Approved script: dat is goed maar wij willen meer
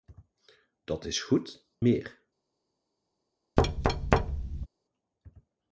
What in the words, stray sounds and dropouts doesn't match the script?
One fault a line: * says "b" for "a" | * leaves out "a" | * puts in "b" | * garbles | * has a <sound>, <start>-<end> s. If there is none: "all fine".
* leaves out "maar wij willen"
* has a thud, 3.6-4.7 s